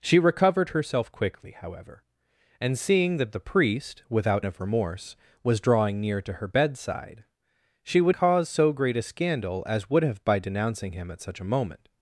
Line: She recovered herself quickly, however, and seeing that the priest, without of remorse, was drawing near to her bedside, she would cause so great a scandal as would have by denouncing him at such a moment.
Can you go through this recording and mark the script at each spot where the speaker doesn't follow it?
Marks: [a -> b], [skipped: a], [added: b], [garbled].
She recovered herself quickly, however, and seeing that the priest, without of remorse, was drawing near to her bedside, she would cause so great a scandal as would have by denouncing him at such a moment.